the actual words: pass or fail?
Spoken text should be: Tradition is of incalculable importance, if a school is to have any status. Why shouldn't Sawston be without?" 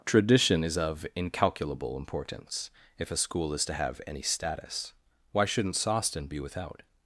pass